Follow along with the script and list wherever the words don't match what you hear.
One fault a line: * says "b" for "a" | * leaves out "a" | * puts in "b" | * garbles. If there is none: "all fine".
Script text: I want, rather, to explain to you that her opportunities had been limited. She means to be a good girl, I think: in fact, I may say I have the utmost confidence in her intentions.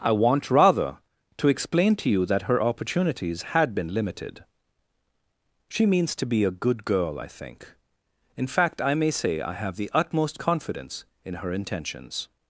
all fine